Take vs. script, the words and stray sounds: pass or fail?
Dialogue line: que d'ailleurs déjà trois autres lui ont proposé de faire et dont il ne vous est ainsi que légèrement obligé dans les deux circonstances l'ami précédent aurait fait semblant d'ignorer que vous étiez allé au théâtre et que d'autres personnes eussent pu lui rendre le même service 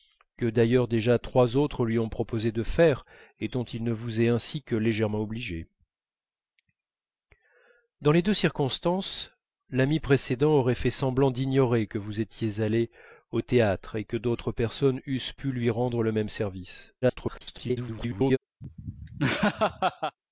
fail